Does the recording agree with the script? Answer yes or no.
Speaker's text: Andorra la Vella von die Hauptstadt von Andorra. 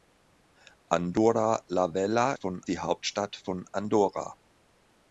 yes